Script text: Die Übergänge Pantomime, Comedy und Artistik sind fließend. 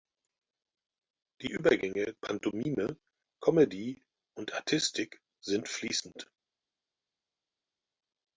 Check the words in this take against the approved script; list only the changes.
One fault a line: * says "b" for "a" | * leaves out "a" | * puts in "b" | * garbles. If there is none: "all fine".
all fine